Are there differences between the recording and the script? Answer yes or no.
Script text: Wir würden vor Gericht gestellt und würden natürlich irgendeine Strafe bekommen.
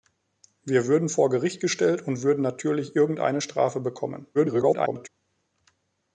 yes